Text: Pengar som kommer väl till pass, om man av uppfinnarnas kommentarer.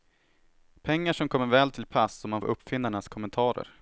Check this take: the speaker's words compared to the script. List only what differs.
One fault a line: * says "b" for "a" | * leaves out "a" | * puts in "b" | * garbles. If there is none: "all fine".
all fine